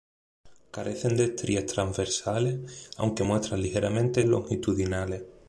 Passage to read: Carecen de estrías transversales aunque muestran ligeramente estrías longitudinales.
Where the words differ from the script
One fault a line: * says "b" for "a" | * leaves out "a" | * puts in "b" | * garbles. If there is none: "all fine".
* leaves out "estrías"